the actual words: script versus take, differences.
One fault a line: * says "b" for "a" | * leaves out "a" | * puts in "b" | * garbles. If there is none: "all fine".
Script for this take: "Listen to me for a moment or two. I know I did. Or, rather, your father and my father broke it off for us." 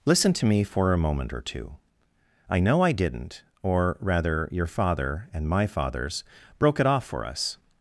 * says "didn't" for "did"
* says "fathers" for "father"